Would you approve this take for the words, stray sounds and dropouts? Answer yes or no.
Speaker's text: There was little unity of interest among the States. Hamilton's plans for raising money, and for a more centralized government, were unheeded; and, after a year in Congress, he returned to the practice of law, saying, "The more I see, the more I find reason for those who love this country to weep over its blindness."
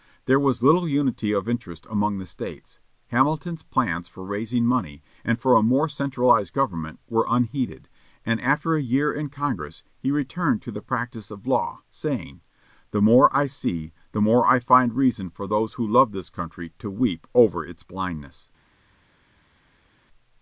yes